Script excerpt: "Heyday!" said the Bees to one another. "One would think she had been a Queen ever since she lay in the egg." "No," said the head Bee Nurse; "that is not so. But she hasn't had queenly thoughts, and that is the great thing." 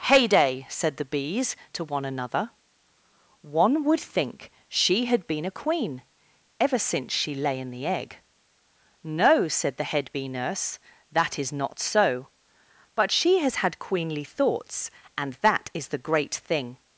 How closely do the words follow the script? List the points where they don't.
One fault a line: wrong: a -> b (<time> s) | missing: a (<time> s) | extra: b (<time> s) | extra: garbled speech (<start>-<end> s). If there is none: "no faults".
wrong: hasn't -> has (13.4 s)